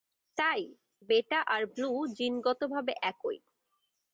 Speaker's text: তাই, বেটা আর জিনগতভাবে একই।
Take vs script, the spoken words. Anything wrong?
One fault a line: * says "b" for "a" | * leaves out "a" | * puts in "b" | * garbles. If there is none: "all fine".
* puts in "ব্লু"